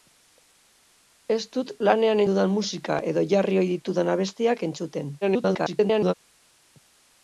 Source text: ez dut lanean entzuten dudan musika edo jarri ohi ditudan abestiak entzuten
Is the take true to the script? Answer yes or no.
no